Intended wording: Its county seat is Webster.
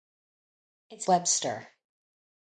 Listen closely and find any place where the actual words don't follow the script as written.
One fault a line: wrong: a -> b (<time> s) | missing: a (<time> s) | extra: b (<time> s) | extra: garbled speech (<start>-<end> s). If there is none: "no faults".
missing: county seat is (1.1 s)